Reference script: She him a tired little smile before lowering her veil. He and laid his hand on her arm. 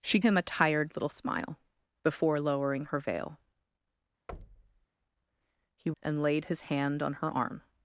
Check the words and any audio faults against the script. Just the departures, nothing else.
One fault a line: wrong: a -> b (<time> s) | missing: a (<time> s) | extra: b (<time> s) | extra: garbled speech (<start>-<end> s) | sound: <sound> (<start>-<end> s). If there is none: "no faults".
sound: thud (4.3-4.9 s)